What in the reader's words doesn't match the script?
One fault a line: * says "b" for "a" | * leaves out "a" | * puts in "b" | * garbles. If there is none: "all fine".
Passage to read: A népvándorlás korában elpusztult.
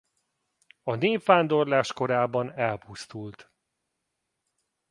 all fine